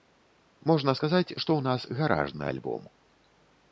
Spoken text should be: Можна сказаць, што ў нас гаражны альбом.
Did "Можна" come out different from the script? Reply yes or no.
no